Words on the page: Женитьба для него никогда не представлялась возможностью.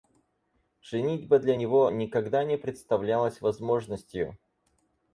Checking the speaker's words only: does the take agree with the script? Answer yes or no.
yes